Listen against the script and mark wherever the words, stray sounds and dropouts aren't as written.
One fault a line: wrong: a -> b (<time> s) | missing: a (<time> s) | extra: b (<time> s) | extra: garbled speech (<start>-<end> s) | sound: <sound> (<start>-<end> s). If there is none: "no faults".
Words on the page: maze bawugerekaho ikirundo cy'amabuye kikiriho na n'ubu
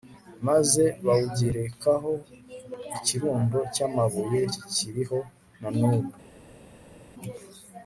no faults